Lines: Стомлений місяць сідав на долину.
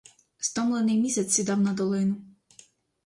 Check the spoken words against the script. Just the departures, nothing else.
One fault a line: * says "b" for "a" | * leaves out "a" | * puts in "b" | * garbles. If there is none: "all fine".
all fine